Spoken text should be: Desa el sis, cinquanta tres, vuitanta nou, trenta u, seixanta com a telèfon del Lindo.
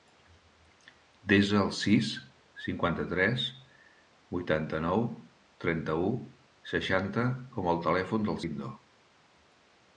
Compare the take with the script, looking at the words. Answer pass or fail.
pass